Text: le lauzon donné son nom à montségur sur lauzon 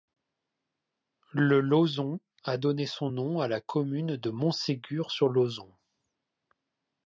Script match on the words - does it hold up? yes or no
no